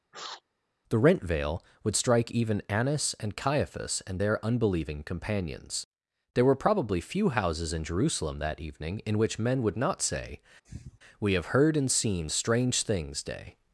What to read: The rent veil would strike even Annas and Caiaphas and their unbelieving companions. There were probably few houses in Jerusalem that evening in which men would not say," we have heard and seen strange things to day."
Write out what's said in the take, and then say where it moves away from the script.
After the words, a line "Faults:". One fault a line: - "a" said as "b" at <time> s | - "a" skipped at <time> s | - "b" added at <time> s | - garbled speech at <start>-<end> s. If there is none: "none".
The rent veil would strike even Annas and Caiaphas and their unbelieving companions. There were probably few houses in Jerusalem that evening in which men would not say," we have heard and seen strange things day."
Faults:
- "to" skipped at 13.2 s